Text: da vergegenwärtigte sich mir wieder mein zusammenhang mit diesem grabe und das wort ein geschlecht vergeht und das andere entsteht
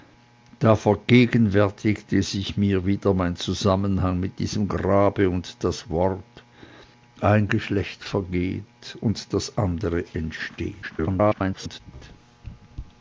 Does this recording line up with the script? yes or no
no